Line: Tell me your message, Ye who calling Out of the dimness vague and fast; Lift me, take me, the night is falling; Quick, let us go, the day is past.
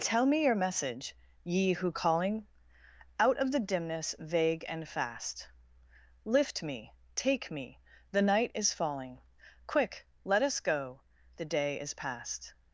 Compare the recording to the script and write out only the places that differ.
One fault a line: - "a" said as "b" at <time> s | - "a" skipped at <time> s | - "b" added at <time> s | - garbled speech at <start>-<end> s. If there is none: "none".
none